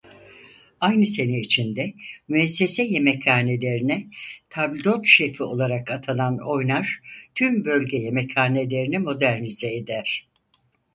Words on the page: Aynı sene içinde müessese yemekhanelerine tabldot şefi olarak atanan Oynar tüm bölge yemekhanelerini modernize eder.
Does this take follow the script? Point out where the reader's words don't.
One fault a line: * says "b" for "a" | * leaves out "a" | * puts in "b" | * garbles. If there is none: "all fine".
all fine